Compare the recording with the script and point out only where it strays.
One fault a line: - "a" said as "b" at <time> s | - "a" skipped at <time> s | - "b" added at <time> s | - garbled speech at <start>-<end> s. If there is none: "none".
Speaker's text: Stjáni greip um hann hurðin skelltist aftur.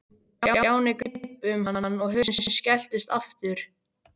- "og" added at 2.1 s